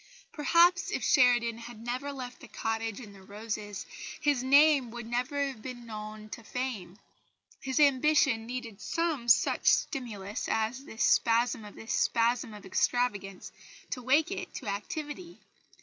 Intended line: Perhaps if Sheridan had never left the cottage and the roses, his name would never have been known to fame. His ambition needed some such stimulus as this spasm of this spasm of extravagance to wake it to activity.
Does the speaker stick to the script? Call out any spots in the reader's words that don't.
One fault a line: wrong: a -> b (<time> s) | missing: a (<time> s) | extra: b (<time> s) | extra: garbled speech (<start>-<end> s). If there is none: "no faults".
no faults